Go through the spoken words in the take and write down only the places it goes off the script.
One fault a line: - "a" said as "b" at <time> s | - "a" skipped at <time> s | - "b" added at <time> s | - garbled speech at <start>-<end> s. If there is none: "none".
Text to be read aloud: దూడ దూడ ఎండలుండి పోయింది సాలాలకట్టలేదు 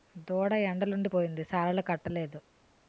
- "దూడ" skipped at 0.5 s